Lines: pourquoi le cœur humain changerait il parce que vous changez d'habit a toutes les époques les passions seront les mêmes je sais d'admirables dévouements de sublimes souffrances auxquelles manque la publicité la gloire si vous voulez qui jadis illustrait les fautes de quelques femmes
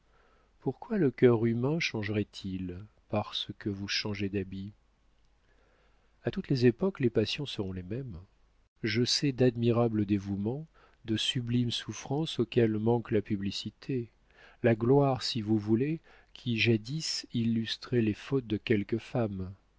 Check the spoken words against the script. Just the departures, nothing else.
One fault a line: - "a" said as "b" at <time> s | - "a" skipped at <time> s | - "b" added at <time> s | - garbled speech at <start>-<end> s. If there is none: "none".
none